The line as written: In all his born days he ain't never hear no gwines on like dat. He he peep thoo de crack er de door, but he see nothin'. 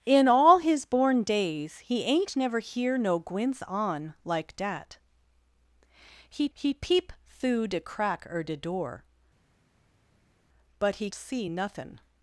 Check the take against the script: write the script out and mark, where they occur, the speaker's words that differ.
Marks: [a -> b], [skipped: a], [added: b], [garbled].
In all his born days he ain't never hear no gwines on like dat. He he peep thoo de crack er de door, but he see nothin'.